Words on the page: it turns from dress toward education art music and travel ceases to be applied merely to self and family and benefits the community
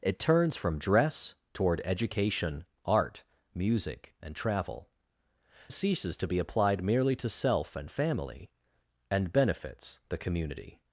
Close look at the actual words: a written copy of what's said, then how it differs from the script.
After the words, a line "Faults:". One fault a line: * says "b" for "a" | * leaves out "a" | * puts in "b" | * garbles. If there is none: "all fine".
it turns from dress toward education art music and travel ceases to be applied merely to self and family and benefits the community
Faults:
all fine